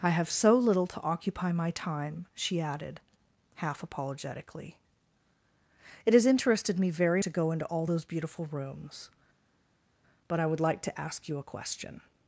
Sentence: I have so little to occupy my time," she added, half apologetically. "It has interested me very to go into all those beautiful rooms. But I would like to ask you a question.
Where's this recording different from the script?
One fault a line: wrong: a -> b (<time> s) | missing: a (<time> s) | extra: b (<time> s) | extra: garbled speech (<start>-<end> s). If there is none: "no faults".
no faults